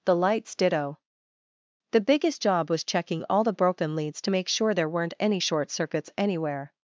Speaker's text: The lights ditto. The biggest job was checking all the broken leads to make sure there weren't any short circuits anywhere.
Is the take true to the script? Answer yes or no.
yes